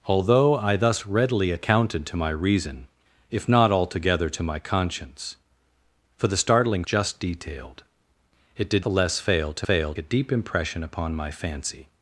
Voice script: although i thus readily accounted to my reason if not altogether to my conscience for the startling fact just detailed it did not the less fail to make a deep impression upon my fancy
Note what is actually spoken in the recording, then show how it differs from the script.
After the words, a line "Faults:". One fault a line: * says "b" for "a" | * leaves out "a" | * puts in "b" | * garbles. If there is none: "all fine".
although i thus readily accounted to my reason if not altogether to my conscience for the startling just detailed it did the less fail to fail a deep impression upon my fancy
Faults:
* leaves out "fact"
* leaves out "not"
* says "fail" for "make"